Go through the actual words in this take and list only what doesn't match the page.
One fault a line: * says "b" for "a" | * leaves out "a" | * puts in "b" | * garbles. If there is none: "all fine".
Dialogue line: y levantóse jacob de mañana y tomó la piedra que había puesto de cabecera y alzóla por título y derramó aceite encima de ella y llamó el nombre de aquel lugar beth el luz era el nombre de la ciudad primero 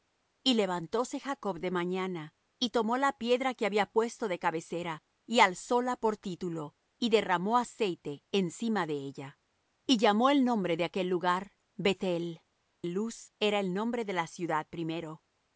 all fine